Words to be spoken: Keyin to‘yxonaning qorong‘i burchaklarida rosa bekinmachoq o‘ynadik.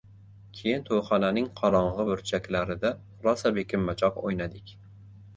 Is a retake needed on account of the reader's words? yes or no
no